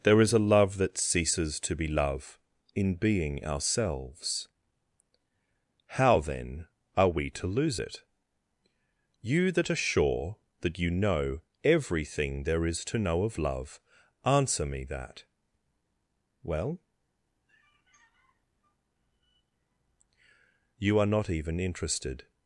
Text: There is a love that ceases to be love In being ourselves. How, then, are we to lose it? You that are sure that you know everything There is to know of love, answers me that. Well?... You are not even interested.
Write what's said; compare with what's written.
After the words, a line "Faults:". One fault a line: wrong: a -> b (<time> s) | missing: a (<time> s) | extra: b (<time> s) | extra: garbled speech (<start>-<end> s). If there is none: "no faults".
There is a love that ceases to be love In being ourselves. How, then, are we to lose it? You that are sure that you know everything There is to know of love, answer me that. Well?... You are not even interested.
Faults:
wrong: answers -> answer (14.2 s)